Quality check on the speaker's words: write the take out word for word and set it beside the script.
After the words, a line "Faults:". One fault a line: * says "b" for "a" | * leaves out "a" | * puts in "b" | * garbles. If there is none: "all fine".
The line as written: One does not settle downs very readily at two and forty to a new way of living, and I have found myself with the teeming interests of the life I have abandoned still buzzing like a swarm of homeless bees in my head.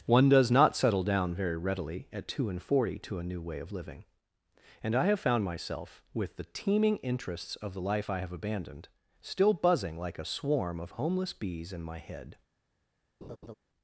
One does not settle down very readily at two and forty to a new way of living, and I have found myself with the teeming interests of the life I have abandoned still buzzing like a swarm of homeless bees in my head.
Faults:
* says "down" for "downs"